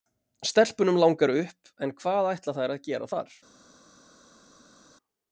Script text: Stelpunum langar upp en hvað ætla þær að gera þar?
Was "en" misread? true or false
false